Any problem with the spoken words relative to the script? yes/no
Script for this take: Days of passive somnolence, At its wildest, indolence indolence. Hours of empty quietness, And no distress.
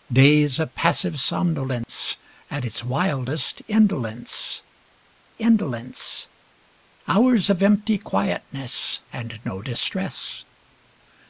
no